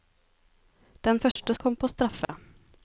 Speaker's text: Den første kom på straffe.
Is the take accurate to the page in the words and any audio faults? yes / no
no